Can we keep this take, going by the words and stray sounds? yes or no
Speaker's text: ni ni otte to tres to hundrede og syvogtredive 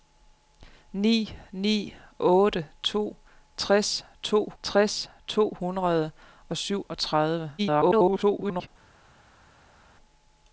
no